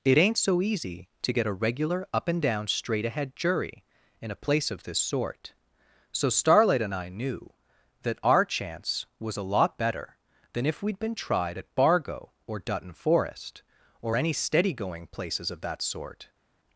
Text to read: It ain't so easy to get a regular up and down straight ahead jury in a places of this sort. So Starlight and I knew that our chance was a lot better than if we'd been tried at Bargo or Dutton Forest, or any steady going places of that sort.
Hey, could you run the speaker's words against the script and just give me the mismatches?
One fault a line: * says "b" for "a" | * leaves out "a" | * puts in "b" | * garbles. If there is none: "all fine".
* says "place" for "places"